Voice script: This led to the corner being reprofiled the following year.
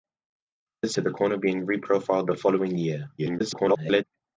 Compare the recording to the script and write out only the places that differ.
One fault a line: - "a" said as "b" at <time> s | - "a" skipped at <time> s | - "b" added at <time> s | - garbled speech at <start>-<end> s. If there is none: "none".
- "led" skipped at 1.0 s
- garbled speech at 3.2-4.0 s